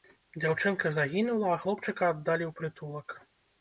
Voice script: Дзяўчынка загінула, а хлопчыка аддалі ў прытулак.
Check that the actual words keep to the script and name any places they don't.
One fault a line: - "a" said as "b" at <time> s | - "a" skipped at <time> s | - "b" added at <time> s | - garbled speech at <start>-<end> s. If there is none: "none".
none